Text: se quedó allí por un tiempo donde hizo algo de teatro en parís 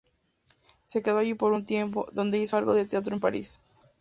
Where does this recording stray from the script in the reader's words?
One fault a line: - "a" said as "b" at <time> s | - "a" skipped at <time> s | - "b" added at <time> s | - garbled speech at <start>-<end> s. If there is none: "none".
none